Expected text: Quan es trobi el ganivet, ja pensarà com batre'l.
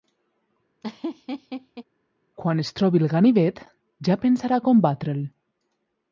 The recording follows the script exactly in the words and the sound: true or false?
false